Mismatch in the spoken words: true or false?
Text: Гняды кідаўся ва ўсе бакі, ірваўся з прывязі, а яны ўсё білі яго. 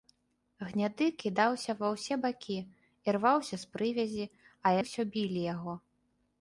true